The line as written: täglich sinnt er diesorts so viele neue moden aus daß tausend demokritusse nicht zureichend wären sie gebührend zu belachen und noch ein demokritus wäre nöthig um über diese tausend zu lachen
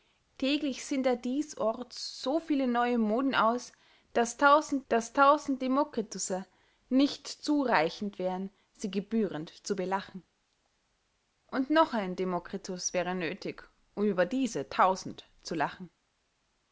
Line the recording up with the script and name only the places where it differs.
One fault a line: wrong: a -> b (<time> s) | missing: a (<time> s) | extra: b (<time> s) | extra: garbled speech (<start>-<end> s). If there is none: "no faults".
extra: daß tausend (4.9 s)